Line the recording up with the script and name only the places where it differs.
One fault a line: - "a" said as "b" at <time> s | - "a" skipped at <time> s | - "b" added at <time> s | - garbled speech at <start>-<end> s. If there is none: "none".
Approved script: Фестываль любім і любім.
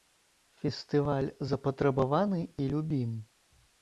- "любім" said as "запатрабаваны" at 1.5 s